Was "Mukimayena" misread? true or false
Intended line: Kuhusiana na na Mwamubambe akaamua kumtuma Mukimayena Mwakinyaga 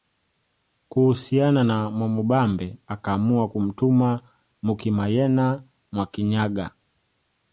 false